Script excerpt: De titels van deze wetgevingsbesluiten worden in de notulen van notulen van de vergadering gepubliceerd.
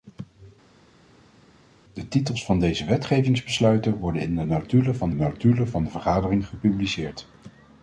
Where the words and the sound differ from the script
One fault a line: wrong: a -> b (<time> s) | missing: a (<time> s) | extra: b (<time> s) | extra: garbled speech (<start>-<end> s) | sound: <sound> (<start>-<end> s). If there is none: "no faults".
no faults